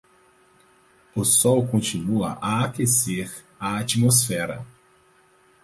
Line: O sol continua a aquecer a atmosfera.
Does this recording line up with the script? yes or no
yes